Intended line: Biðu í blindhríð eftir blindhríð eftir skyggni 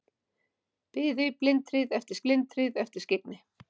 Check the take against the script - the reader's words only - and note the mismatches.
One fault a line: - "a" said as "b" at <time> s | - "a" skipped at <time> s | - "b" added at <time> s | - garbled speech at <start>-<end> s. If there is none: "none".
none